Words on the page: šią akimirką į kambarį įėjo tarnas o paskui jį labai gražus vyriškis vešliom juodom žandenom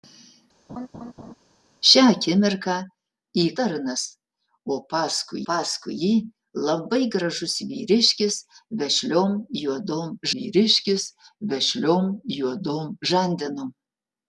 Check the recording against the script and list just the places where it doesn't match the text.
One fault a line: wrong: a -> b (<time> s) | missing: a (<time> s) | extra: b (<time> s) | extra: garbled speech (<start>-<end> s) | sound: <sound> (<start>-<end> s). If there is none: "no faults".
sound: laugh (0.7-1.3 s)
missing: kambarį įėjo (3.4 s)
extra: paskui (5.5 s)
extra: vyriškis vešliom juodom (10.4 s)